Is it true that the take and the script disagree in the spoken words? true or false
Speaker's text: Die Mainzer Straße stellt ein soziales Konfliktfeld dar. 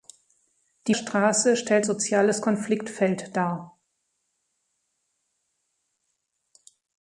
true